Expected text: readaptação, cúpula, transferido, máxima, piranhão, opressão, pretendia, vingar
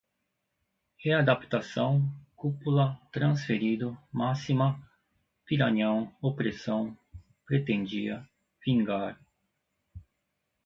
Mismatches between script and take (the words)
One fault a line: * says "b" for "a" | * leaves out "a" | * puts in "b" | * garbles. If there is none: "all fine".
all fine